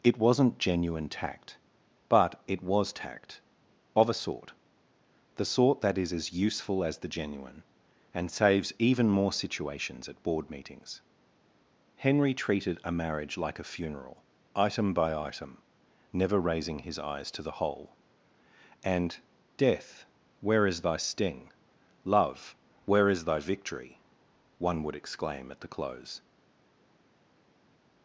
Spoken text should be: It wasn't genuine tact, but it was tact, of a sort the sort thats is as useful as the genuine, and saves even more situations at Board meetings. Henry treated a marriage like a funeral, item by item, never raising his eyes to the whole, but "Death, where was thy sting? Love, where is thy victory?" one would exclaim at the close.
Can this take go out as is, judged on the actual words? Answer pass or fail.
fail